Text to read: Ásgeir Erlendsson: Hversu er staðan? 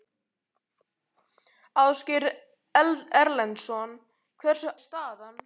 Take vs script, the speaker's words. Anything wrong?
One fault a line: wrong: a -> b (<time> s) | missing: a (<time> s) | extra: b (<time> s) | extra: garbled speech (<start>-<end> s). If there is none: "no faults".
no faults